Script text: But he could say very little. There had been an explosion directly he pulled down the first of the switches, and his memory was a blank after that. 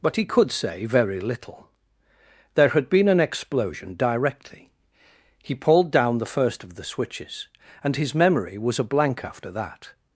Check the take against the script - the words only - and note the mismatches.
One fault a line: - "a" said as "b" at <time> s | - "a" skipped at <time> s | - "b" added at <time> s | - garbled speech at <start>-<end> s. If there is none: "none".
none